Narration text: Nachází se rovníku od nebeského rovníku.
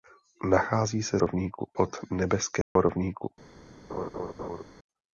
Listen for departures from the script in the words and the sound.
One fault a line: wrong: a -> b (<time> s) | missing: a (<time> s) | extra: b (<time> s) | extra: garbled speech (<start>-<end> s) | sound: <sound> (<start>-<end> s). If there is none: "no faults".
sound: dropout (2.6-2.8 s)
sound: laugh (3.9-4.6 s)